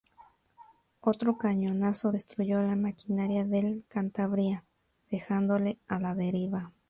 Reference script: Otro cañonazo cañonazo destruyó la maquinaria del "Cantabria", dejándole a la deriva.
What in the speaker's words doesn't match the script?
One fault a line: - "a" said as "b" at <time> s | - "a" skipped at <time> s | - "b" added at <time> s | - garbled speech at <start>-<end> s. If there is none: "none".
- "cañonazo" skipped at 2.1 s